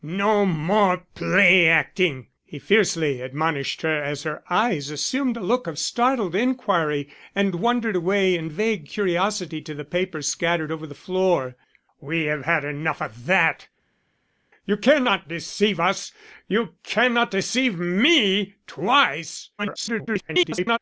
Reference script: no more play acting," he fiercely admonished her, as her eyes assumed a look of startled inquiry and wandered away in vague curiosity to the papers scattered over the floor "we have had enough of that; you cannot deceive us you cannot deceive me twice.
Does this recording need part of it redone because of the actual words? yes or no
yes